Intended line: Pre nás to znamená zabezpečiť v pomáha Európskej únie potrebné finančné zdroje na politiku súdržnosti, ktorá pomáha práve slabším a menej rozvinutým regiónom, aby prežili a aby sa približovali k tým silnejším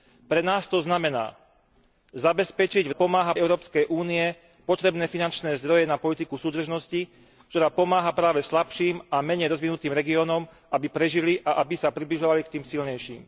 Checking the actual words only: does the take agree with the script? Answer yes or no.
yes